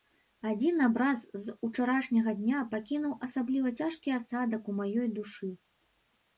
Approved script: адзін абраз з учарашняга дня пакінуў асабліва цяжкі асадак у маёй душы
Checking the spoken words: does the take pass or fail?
pass